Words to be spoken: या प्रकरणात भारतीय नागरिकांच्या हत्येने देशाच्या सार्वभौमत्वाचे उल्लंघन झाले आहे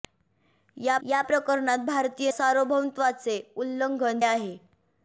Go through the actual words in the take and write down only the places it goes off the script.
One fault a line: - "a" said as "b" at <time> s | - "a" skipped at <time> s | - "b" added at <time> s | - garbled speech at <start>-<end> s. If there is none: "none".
- "या" added at 1.0 s
- "नागरिकांच्या हत्येने देशाच्या" skipped at 2.3 s
- "झाले" skipped at 4.2 s